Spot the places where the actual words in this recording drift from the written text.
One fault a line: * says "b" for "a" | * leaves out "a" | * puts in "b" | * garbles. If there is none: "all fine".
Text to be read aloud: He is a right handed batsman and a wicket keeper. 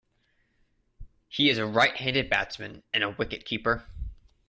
all fine